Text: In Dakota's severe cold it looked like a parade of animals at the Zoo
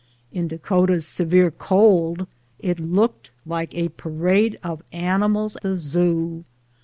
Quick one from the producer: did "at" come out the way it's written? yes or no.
no